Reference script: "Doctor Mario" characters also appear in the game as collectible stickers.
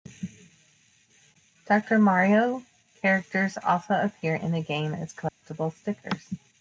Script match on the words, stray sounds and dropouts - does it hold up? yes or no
no